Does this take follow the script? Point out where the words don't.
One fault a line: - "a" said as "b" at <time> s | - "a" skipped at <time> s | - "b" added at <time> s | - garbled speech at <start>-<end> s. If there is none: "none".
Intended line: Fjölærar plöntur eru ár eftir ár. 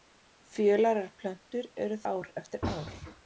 none